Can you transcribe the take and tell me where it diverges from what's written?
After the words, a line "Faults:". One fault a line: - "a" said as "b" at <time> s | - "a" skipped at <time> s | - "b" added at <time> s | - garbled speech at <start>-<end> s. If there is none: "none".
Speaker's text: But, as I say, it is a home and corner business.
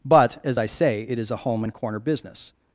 But, as I say, it is a home and corner business.
Faults:
none